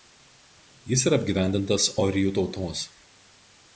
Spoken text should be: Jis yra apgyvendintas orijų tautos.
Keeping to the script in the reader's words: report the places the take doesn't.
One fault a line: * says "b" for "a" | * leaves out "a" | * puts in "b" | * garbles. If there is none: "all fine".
all fine